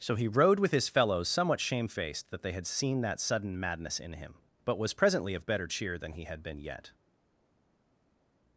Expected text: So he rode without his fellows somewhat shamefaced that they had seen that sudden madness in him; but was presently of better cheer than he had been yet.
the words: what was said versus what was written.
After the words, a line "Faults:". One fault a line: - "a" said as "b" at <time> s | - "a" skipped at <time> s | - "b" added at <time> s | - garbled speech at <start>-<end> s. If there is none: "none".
So he rode with his fellows somewhat shamefaced that they had seen that sudden madness in him; but was presently of better cheer than he had been yet.
Faults:
- "without" said as "with" at 0.6 s